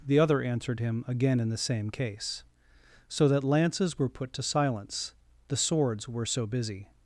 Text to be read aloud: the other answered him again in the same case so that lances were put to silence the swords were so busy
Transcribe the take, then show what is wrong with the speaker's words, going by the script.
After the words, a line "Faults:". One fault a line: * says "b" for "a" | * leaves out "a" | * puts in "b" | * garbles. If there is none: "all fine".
the other answered him again in the same case so that lances were put to silence the swords were so busy
Faults:
all fine